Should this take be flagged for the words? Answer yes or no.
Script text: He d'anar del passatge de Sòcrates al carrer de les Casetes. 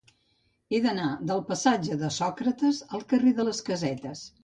no